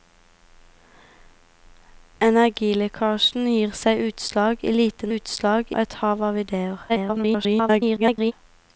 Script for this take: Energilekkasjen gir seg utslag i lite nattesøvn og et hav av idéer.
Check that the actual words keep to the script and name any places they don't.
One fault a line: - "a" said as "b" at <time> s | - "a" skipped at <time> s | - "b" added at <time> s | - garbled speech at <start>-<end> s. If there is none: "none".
- "nattesøvn" said as "utslag" at 5.1 s
- garbled speech at 6.9-8.3 s